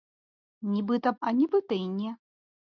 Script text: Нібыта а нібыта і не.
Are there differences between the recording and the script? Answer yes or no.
no